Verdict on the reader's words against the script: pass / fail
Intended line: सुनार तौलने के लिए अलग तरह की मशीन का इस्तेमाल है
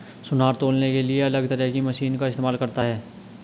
fail